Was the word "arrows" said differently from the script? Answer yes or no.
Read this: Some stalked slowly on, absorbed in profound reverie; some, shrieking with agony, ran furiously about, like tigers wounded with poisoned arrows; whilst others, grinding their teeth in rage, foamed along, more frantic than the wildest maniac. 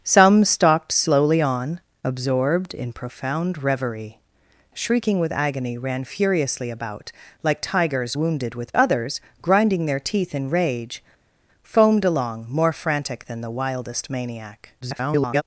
yes